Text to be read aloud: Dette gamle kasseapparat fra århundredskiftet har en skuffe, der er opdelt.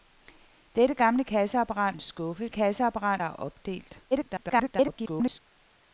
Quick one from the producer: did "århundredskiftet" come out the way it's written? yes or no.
no